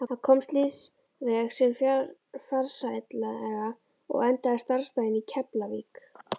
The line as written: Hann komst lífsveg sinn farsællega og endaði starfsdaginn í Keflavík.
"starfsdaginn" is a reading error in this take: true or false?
false